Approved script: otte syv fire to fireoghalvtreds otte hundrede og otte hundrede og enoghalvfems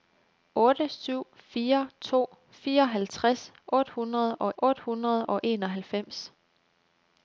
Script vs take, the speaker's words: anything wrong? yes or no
no